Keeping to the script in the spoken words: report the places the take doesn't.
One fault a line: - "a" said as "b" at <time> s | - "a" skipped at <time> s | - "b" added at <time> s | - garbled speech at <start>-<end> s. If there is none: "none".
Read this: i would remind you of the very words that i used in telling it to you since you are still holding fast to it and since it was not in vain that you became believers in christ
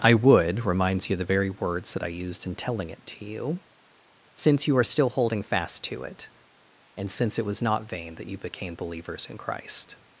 - "remind" said as "reminds" at 0.7 s
- "in" skipped at 7.9 s